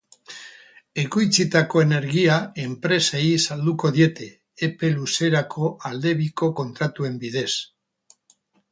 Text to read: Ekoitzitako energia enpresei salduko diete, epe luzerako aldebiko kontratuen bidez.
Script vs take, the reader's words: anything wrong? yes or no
no